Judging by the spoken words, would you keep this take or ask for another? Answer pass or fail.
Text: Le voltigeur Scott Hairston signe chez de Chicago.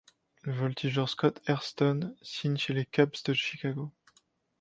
fail